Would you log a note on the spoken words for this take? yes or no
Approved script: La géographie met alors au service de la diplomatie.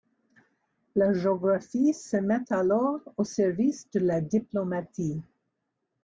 yes